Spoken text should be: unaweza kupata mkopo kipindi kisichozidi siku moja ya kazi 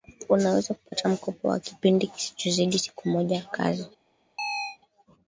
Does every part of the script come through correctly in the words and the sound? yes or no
no